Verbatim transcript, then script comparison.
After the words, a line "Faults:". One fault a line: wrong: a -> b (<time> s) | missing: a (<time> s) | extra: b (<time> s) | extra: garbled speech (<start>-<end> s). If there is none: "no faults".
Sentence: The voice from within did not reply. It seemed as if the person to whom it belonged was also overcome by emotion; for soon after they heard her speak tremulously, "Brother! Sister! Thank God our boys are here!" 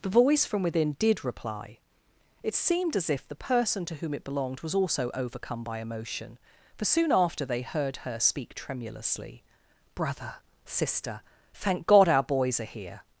The voice from within did reply. It seemed as if the person to whom it belonged was also overcome by emotion; for soon after they heard her speak tremulously, "Brother! Sister! Thank God our boys are here!"
Faults:
missing: not (1.2 s)